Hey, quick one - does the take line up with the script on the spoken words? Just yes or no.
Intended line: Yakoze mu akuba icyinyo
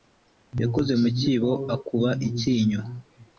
no